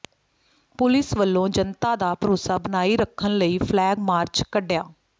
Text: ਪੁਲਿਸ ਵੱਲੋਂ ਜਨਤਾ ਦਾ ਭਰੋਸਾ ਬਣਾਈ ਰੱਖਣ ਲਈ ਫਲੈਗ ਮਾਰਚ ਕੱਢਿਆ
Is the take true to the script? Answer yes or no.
yes